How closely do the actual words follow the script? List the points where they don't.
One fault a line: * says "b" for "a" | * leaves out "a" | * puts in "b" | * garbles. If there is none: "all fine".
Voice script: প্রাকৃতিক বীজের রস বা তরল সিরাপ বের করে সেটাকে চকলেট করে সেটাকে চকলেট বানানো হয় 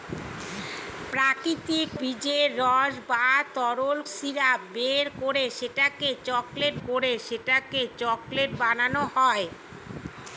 all fine